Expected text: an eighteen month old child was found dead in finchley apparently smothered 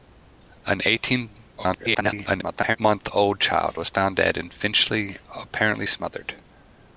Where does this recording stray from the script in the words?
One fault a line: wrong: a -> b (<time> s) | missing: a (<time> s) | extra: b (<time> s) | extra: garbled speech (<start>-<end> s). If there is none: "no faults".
extra: garbled speech (1.6-2.8 s)